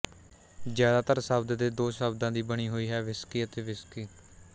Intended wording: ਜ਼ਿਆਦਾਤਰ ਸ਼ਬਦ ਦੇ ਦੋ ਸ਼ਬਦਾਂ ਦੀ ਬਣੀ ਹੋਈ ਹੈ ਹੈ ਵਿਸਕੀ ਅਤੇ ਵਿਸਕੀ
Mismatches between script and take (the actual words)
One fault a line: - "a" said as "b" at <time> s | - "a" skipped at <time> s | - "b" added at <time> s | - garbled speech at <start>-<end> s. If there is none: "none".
- "ਹੈ" skipped at 3.0 s